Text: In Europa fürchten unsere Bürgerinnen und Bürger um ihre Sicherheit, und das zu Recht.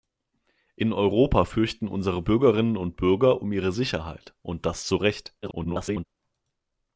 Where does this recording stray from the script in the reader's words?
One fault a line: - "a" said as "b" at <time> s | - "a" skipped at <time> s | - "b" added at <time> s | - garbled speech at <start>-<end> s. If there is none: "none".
- garbled speech at 5.4-6.1 s